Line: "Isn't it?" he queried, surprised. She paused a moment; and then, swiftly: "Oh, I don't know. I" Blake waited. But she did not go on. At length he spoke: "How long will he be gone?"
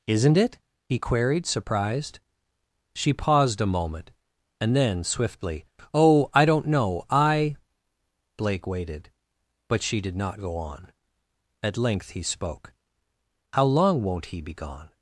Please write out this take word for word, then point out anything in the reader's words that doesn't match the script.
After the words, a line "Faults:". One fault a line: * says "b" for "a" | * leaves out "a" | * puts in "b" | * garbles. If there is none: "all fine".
"Isn't it?" he queried, surprised. She paused a moment; and then, swiftly: "Oh, I don't know. I" Blake waited. But she did not go on. At length he spoke: "How long won't he be gone?"
Faults:
* says "won't" for "will"